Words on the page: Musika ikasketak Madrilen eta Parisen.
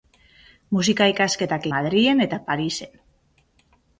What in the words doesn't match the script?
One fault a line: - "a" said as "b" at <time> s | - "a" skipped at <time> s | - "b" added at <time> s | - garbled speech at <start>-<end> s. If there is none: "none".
none